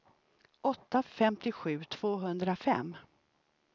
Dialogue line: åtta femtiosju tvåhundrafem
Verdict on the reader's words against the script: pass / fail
pass